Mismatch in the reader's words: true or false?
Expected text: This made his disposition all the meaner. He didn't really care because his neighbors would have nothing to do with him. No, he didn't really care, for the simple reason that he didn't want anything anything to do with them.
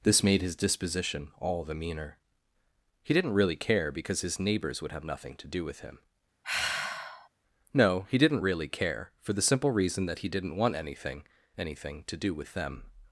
false